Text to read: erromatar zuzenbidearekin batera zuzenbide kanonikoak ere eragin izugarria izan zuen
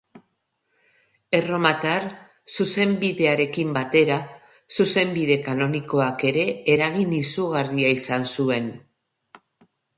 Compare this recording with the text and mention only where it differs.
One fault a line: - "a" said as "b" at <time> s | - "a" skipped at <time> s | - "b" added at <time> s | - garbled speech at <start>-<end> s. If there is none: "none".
none